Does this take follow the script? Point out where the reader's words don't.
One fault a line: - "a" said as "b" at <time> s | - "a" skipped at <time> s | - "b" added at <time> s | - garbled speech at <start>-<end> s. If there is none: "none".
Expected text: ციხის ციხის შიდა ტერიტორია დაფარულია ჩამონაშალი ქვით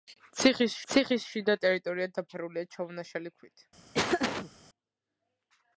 none